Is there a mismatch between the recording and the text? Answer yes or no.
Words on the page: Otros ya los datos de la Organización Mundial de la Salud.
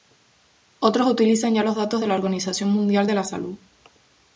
yes